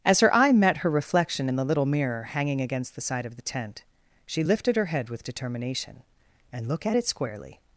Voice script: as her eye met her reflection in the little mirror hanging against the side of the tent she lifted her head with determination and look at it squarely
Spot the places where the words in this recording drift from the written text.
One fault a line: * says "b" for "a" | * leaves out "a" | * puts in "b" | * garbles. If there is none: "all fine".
all fine